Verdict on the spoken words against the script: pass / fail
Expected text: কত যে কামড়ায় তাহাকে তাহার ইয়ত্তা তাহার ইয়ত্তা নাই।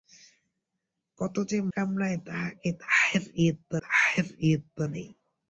pass